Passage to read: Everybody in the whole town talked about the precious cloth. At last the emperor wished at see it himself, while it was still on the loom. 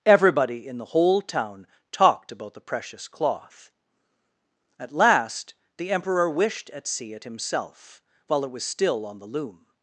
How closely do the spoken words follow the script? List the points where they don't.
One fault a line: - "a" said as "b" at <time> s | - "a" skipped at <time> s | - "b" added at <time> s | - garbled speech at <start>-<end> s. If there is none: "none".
none